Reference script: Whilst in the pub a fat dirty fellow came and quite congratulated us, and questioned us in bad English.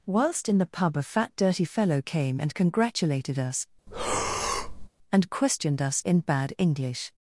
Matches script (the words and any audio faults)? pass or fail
fail